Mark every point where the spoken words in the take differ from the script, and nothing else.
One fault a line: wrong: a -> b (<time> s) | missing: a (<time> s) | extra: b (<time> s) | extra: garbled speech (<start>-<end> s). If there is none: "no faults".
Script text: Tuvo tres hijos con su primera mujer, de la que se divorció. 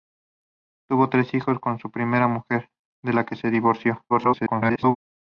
extra: garbled speech (4.1-5.0 s)